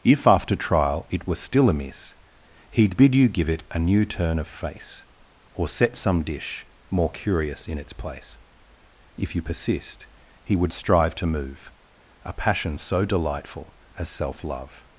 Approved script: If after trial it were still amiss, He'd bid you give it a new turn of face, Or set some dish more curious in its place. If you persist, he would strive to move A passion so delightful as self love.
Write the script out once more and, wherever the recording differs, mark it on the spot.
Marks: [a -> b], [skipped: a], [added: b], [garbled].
If after trial it were still amiss, He'd bid you give it a new turn of face, Or set some dish more curious in its place. If you persist, he would strive to move A passion so delightful as self love.